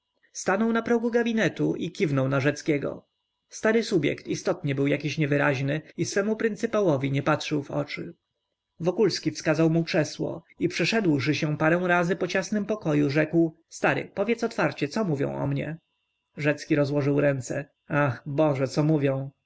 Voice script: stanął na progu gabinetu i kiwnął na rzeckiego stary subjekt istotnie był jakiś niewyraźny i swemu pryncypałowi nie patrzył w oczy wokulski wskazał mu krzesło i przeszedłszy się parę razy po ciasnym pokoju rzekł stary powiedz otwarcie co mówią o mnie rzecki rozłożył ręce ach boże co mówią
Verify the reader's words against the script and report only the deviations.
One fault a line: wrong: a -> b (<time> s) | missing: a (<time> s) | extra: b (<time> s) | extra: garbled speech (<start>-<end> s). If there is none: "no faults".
no faults